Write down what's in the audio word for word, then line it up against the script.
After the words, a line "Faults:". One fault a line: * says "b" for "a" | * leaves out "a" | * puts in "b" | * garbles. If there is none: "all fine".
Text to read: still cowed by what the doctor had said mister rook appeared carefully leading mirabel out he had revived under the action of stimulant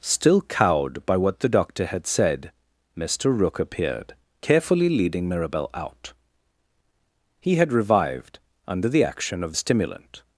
still cowed by what the doctor had said mister rook appeared carefully leading mirabel out he had revived under the action of stimulant
Faults:
all fine